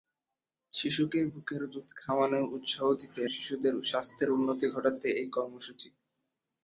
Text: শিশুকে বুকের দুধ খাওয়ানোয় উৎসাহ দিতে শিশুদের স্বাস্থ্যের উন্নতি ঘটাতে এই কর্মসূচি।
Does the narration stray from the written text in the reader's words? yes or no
no